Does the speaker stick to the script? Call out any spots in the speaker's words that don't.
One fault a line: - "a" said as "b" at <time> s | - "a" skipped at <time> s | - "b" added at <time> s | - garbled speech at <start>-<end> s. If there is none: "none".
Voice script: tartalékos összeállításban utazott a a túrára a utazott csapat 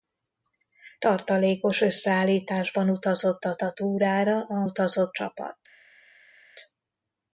none